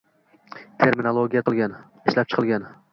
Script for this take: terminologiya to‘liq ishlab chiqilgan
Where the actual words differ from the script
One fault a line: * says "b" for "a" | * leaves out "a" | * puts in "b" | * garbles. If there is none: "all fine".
* says "chiqilgan" for "to‘liq"